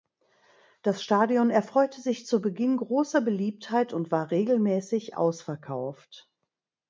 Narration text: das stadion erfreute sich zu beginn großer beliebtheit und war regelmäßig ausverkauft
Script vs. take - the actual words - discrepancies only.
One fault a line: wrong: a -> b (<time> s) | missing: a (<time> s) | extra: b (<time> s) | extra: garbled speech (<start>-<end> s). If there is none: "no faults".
no faults